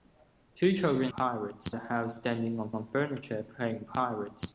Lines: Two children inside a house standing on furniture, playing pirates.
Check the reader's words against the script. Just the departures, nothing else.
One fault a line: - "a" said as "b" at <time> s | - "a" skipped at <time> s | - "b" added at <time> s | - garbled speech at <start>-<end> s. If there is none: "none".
- "inside" said as "pirates" at 1.2 s
- "on" added at 2.7 s